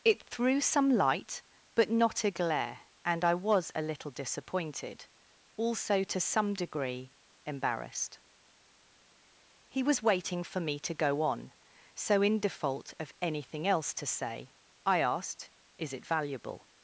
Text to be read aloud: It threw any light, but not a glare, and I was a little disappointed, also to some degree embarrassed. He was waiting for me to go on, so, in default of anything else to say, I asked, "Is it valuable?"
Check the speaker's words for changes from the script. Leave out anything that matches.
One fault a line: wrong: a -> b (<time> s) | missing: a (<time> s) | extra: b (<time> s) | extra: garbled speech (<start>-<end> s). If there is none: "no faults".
wrong: any -> some (0.6 s)